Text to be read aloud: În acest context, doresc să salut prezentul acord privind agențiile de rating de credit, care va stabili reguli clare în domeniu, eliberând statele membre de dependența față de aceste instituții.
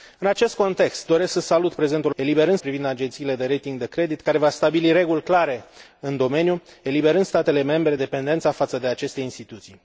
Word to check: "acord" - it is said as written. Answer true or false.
false